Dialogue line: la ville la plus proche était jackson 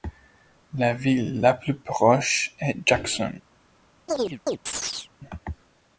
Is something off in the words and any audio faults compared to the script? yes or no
yes